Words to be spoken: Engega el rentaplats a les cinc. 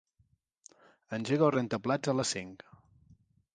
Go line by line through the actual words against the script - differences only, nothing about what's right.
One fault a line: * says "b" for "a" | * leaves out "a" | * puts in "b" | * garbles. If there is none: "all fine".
all fine